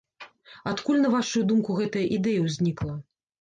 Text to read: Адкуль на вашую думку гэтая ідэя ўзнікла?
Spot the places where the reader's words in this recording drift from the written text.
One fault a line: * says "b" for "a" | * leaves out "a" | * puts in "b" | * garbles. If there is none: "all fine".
all fine